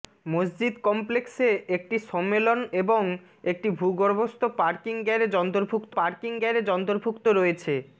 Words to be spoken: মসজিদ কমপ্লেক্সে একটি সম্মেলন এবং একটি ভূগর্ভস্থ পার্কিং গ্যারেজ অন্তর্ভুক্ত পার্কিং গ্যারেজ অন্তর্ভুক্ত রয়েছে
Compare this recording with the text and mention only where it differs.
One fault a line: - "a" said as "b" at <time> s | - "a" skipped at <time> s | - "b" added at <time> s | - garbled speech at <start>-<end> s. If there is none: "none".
none